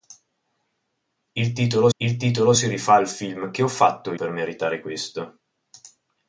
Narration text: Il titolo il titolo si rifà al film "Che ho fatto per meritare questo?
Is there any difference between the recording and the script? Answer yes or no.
no